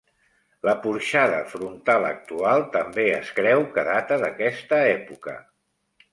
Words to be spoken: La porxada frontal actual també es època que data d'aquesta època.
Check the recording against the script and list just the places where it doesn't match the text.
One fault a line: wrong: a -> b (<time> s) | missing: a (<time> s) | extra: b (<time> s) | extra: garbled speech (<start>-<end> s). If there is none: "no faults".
wrong: època -> creu (3.4 s)